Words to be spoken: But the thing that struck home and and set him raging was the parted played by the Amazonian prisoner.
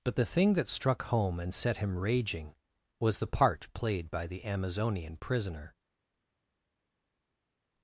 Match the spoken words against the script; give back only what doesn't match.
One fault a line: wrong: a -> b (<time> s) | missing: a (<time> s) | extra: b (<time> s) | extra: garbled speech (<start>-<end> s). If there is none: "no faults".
missing: and (1.5 s)
wrong: parted -> part (3.3 s)